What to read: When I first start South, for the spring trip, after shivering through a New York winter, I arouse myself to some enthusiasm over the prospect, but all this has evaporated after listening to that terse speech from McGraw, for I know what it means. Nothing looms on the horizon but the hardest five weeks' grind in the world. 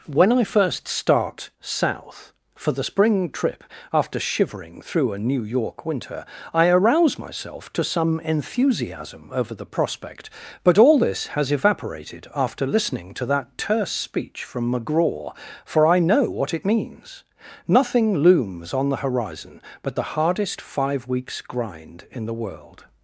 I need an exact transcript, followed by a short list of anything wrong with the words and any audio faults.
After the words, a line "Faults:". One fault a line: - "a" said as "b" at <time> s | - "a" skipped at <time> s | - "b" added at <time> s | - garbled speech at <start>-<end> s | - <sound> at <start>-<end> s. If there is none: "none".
When I first start South, for the spring trip, after shivering through a New York winter, I arouse myself to some enthusiasm over the prospect, but all this has evaporated after listening to that terse speech from McGraw, for I know what it means. Nothing looms on the horizon but the hardest five weeks' grind in the world.
Faults:
none